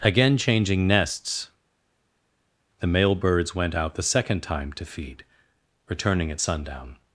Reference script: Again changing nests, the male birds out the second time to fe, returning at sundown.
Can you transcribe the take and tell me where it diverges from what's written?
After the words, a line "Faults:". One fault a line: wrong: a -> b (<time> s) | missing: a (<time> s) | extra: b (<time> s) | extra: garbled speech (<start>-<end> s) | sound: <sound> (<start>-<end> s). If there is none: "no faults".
Again changing nests, the male birds went out the second time to feed, returning at sundown.
Faults:
extra: went (3.5 s)
wrong: fe -> feed (4.9 s)